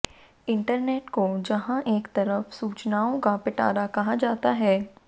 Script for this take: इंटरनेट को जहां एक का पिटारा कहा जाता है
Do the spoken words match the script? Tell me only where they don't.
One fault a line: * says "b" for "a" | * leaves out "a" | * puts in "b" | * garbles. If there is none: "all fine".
* puts in "तरफ सूचनाओं"